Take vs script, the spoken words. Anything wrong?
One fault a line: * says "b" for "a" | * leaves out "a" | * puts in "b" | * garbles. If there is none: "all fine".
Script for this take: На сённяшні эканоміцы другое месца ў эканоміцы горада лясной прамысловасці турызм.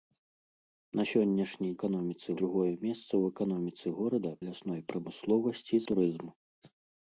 all fine